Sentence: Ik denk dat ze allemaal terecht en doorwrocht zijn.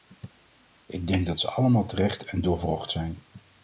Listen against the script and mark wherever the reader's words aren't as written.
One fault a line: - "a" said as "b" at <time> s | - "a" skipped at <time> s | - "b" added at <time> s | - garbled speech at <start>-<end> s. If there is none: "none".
none